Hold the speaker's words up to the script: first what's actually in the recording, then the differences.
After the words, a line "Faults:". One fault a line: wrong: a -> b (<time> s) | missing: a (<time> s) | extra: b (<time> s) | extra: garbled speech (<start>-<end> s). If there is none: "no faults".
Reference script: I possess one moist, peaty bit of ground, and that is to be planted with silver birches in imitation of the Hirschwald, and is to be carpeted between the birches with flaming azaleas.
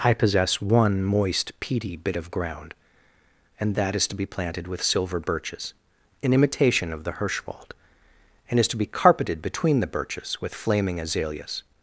I possess one moist, peaty bit of ground, and that is to be planted with silver birches in imitation of the Hirschwald, and is to be carpeted between the birches with flaming azaleas.
Faults:
no faults